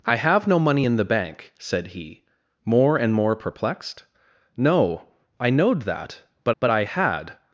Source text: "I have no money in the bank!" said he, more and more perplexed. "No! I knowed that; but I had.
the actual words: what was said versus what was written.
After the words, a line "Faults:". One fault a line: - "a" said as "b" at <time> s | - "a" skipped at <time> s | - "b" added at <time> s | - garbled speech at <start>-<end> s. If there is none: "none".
"I have no money in the bank!" said he, more and more perplexed. "No! I knowed that; but but I had.
Faults:
- "but" added at 6.6 s